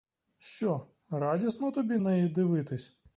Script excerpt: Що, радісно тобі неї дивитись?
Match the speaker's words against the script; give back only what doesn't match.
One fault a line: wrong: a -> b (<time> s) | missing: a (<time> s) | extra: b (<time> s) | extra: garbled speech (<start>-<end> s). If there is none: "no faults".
no faults